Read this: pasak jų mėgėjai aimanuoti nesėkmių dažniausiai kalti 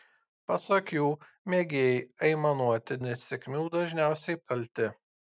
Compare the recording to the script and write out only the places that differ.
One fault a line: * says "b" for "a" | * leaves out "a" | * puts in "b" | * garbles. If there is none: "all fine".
all fine